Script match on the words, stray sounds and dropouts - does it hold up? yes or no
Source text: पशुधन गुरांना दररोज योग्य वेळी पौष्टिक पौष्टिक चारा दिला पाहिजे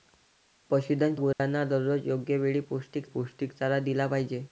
no